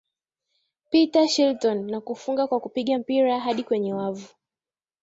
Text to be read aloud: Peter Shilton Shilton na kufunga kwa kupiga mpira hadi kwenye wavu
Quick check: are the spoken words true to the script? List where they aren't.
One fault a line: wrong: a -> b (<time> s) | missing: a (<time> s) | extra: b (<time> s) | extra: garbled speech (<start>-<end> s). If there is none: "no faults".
missing: Shilton (1.9 s)